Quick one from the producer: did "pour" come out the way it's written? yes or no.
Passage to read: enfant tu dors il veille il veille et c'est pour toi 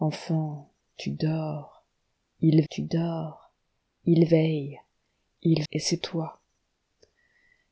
no